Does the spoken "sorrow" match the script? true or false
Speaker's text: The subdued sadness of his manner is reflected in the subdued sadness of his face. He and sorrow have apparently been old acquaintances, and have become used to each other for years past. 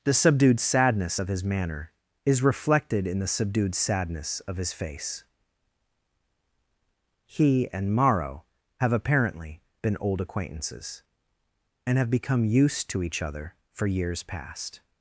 false